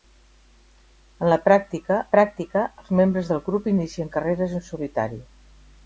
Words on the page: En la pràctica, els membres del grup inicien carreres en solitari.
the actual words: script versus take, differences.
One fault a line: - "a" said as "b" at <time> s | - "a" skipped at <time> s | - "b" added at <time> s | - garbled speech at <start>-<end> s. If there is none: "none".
- "pràctica" added at 2.1 s